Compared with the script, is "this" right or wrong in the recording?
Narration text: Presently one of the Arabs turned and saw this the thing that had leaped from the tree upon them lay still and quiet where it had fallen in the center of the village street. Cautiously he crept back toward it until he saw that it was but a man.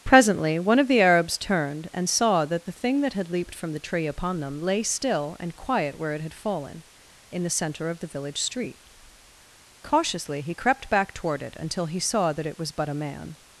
wrong